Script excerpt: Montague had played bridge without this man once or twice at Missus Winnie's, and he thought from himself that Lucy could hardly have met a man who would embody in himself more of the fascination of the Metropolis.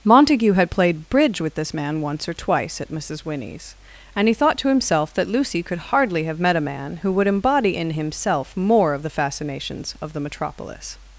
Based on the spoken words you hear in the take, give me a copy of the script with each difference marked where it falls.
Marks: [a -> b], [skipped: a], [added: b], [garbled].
Montague had played bridge [without -> with] this man once or twice at Missus Winnie's, and he thought [from -> to] himself that Lucy could hardly have met a man who would embody in himself more of the [fascination -> fascinations] of the Metropolis.